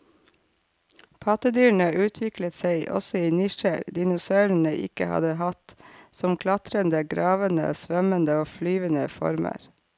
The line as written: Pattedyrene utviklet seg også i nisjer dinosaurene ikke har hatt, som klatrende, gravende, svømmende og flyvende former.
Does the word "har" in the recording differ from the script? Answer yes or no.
yes